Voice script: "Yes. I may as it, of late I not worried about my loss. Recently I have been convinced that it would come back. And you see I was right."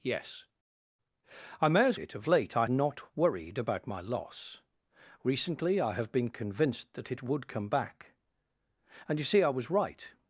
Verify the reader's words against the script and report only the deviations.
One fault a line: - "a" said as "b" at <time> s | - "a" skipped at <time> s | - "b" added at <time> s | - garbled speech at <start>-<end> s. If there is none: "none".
none